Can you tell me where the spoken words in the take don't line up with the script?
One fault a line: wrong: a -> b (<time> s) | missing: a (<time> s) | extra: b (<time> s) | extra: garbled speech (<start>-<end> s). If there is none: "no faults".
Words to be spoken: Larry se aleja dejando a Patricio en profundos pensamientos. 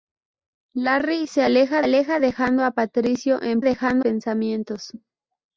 extra: aleja (1.8 s)
wrong: profundos -> dejando (3.6 s)